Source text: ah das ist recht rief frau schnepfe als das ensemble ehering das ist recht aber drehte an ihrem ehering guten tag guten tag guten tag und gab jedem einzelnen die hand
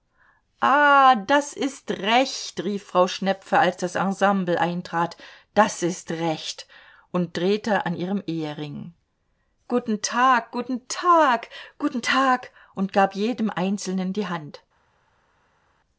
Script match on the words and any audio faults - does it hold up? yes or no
no